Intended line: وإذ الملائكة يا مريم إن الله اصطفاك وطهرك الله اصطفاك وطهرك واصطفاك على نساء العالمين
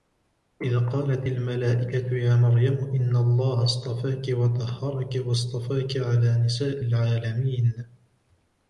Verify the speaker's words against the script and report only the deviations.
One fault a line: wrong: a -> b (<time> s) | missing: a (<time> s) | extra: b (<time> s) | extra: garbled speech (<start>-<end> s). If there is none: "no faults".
extra: قالت (0.8 s)
missing: الله اصطفاك وطهرك (5.2 s)